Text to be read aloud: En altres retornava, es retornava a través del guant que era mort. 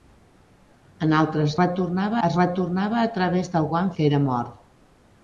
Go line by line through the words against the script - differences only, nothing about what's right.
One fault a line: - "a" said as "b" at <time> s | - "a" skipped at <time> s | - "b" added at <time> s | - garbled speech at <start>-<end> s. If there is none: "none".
none